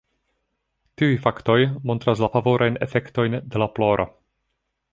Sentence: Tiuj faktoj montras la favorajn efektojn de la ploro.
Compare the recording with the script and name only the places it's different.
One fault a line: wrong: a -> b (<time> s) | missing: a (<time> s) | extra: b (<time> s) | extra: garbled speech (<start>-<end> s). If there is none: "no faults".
no faults